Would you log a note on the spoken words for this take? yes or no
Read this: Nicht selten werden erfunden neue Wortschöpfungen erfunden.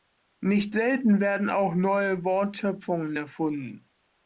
yes